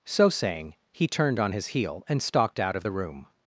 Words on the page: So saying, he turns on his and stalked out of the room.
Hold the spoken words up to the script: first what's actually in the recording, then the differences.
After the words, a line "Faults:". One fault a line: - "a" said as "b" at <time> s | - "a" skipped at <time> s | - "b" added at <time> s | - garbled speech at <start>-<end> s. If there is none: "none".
So saying, he turned on his heel and stalked out of the room.
Faults:
- "turns" said as "turned" at 1.1 s
- "heel" added at 1.7 s